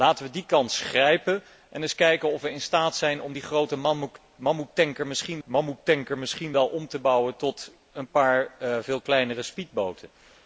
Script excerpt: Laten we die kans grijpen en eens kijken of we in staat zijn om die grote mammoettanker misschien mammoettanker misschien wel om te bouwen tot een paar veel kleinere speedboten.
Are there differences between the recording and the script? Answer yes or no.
no